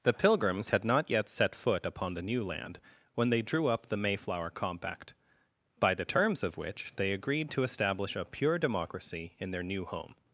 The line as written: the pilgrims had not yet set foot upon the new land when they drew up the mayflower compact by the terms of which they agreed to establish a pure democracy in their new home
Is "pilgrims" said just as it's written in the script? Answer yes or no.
yes